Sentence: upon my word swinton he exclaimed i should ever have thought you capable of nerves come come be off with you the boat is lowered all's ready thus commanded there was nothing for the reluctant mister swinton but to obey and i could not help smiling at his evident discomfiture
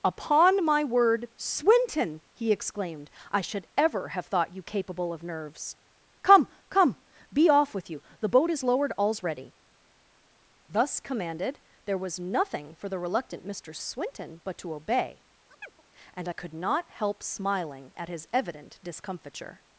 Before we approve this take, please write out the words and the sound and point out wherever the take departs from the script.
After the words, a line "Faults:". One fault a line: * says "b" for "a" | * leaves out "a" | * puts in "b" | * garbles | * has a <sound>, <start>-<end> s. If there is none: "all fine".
upon my word swinton he exclaimed i should ever have thought you capable of nerves come come be off with you the boat is lowered all's ready thus commanded there was nothing for the reluctant mister swinton but to obey and i could not help smiling at his evident discomfiture
Faults:
* has a chirp, 15.5-15.8 s